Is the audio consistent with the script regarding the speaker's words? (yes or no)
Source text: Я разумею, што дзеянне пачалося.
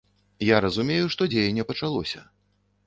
yes